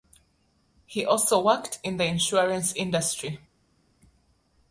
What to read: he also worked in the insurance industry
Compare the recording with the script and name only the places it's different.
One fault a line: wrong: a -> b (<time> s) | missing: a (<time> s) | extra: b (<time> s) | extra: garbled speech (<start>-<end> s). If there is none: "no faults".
no faults